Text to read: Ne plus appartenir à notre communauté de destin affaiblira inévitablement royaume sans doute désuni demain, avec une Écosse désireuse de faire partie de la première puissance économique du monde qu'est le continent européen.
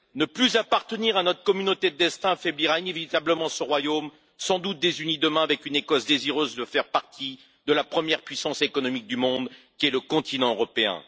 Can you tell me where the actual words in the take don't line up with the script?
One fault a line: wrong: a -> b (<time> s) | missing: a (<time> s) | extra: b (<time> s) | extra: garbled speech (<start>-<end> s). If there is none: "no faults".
extra: ce (3.5 s)